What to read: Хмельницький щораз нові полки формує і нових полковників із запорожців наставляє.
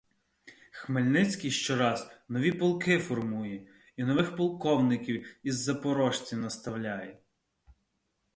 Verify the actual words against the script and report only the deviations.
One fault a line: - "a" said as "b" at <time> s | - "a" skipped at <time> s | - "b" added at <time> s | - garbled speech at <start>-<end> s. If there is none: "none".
none